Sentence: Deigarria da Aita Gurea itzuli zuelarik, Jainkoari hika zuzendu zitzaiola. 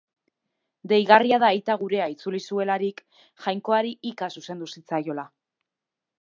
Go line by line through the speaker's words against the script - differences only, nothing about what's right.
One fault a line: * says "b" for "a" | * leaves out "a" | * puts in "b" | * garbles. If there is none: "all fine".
all fine